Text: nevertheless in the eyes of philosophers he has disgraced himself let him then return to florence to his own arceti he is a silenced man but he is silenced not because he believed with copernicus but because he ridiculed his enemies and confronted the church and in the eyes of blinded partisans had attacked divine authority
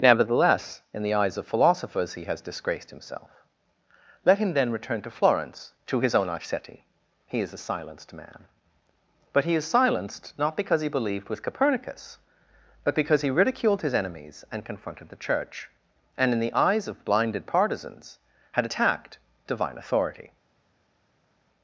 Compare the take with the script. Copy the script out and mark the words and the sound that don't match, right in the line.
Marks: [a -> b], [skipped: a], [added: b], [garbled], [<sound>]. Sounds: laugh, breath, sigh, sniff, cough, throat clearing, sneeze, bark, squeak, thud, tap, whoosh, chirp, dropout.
nevertheless in the eyes of philosophers he has disgraced himself let him then return to florence to his own arceti he is a silenced man but he is silenced not because he believed with copernicus but because he ridiculed his enemies and confronted the church and in the eyes of blinded partisans had attacked divine authority